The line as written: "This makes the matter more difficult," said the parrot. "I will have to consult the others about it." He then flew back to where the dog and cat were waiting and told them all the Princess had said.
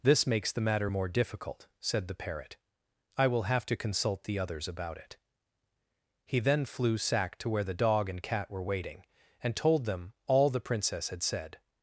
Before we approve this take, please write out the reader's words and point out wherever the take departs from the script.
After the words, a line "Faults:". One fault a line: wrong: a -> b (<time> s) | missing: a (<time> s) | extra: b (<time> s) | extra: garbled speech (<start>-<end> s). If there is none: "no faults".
"This makes the matter more difficult," said the parrot. "I will have to consult the others about it." He then flew sack to where the dog and cat were waiting and told them all the Princess had said.
Faults:
wrong: back -> sack (7.0 s)